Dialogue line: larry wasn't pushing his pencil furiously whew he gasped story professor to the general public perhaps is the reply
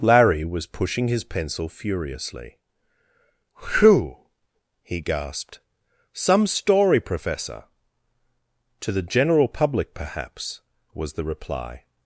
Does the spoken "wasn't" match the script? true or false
false